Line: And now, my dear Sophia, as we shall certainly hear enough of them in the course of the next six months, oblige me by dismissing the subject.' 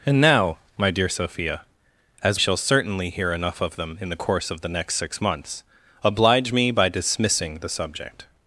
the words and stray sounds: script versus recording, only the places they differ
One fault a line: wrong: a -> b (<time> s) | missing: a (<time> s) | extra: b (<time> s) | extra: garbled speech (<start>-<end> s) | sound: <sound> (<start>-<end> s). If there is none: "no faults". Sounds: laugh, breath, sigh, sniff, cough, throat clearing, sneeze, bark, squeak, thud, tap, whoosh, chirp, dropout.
missing: we (2.4 s)